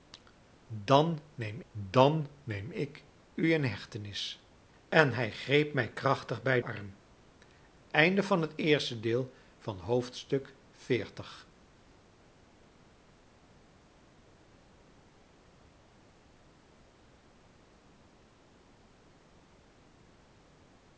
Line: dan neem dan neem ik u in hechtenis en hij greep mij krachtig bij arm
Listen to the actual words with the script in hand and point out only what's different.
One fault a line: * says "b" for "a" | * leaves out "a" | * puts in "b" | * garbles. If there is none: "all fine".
all fine